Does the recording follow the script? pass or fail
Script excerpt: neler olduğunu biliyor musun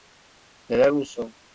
fail